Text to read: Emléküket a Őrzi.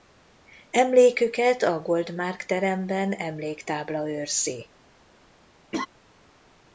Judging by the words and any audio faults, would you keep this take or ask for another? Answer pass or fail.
fail